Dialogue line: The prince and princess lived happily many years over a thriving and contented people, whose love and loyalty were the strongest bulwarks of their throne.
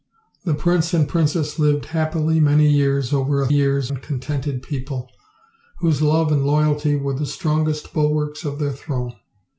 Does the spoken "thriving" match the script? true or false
false